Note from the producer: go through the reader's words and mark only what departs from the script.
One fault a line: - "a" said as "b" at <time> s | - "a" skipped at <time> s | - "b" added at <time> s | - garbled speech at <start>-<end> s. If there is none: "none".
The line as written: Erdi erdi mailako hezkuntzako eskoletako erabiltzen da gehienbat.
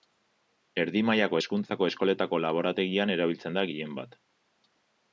- "erdi" skipped at 1.0 s
- "laborategian" added at 2.5 s